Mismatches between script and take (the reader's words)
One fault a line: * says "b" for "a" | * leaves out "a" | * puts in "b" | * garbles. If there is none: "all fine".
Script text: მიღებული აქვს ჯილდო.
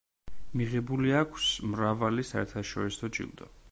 * puts in "მრავალი საერთაშორისო"